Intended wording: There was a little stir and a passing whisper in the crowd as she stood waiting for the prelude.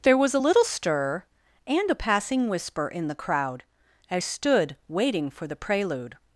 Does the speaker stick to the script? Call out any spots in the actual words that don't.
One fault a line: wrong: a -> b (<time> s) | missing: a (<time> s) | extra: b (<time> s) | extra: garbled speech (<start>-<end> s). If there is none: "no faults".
missing: she (4.2 s)